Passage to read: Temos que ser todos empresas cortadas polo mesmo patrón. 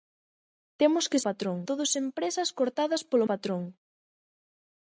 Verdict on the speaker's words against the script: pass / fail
fail